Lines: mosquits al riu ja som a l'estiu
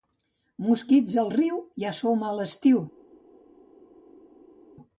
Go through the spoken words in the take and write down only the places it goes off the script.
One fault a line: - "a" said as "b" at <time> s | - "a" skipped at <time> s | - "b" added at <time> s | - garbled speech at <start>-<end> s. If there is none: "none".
none